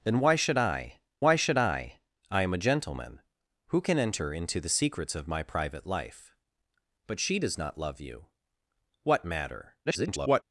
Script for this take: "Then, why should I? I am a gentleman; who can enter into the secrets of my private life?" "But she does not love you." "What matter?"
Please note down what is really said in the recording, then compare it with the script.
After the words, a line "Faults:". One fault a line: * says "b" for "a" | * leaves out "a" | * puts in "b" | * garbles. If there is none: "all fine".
"Then, why should I why should I? I am a gentleman; who can enter into the secrets of my private life?" "But she does not love you." "What matter?" [garbled]
Faults:
* puts in "why should I"
* garbles